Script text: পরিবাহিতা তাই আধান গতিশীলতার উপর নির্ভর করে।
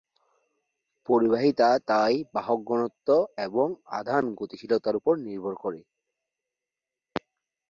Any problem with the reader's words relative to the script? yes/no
yes